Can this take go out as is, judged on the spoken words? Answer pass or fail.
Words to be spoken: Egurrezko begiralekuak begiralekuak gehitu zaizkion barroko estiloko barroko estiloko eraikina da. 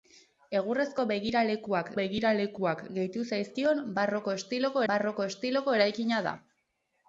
pass